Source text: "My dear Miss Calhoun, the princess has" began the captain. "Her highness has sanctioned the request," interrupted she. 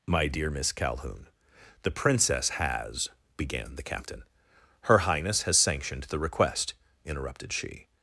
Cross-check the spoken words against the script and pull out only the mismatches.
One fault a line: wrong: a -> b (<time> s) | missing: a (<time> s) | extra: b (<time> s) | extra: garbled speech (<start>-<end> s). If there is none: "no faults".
no faults